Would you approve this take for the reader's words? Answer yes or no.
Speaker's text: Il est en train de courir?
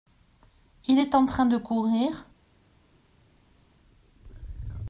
yes